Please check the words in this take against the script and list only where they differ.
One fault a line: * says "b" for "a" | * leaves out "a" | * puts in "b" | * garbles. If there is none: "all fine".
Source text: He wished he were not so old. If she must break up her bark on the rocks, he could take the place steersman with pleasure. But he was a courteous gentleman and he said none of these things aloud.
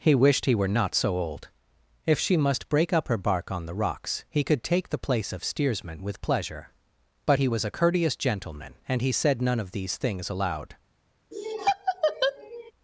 * puts in "of"